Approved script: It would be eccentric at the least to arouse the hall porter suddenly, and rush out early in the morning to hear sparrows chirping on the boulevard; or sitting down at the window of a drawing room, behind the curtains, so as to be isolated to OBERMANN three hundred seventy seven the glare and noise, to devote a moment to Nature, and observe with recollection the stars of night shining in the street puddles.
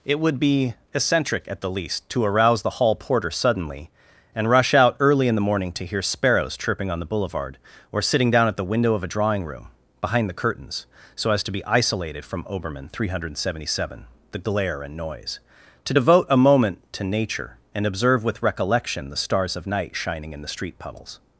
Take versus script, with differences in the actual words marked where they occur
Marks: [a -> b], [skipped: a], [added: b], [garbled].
It would be eccentric at the least to arouse the hall porter suddenly, and rush out early in the morning to hear sparrows chirping on the boulevard; or sitting down at the window of a drawing room, behind the curtains, so as to be isolated [to -> from] OBERMANN three hundred seventy seven the glare and noise, to devote a moment to Nature, and observe with recollection the stars of night shining in the street puddles.